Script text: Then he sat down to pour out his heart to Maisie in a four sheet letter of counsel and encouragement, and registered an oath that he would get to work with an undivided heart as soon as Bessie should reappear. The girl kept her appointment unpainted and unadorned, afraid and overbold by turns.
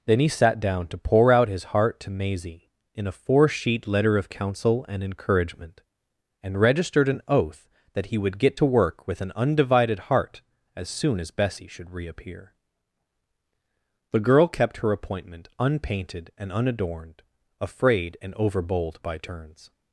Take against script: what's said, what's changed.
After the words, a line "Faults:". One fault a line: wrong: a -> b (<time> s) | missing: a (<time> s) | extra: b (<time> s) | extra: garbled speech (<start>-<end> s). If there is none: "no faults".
Then he sat down to pour out his heart to Maisie in a four sheet letter of counsel and encouragement, and registered an oath that he would get to work with an undivided heart as soon as Bessie should reappear. The girl kept her appointment unpainted and unadorned, afraid and overbold by turns.
Faults:
no faults